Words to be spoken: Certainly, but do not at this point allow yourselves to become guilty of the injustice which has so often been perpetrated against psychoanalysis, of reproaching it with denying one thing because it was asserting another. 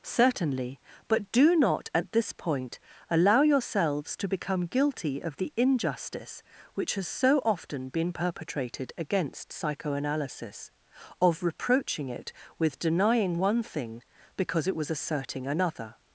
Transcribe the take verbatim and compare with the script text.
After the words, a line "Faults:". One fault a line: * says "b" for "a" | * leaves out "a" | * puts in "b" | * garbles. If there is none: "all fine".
Certainly, but do not at this point allow yourselves to become guilty of the injustice which has so often been perpetrated against psychoanalysis, of reproaching it with denying one thing because it was asserting another.
Faults:
all fine